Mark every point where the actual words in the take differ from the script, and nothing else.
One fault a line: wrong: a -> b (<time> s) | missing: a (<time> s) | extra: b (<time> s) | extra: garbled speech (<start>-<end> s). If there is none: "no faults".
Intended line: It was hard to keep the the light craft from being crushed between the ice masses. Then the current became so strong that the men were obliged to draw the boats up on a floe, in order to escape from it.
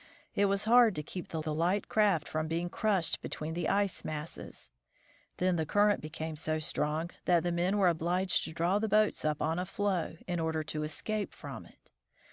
no faults